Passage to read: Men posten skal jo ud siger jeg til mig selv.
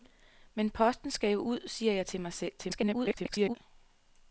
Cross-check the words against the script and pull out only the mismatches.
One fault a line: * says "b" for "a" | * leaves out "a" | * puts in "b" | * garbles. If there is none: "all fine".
* garbles